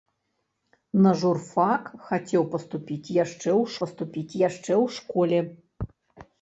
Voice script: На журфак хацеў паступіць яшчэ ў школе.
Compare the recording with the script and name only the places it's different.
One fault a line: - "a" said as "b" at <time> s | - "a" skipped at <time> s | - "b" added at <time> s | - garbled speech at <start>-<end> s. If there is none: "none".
- "паступіць яшчэ ў" added at 3.8 s